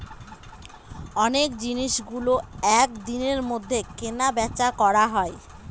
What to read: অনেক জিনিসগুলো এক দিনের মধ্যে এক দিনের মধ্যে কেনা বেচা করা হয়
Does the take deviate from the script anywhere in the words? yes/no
yes